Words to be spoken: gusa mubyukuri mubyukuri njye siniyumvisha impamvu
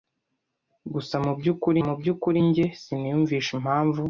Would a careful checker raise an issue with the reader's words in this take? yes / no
no